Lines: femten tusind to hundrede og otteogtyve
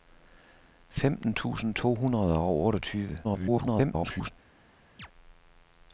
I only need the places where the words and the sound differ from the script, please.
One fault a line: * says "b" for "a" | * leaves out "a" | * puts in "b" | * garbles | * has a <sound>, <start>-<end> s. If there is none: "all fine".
* garbles
* has a chirp, 5.0-5.1 s